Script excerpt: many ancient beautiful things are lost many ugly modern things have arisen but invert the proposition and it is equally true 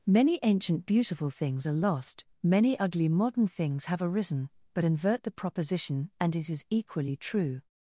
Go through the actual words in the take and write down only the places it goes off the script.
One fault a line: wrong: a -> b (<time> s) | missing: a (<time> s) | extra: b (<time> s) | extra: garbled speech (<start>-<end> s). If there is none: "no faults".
no faults